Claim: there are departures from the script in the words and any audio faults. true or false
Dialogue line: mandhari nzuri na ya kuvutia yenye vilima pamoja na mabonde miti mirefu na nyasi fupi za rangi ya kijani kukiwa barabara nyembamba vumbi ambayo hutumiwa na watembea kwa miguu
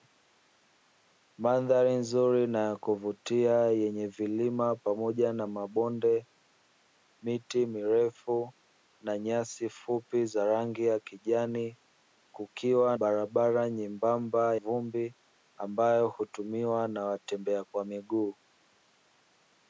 false